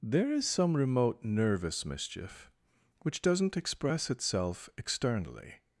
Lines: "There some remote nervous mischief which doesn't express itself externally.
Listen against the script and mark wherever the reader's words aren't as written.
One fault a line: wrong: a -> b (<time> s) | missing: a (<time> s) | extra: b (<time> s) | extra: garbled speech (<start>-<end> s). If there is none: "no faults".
extra: is (0.3 s)